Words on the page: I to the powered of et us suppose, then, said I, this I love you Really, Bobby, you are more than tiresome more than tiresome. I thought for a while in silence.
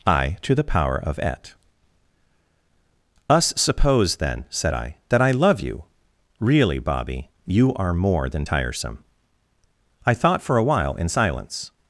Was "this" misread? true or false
true